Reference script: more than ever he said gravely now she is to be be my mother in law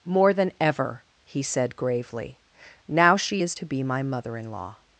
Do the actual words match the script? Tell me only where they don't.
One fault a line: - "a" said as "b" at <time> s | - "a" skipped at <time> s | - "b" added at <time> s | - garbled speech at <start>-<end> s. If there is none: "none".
- "be" skipped at 3.8 s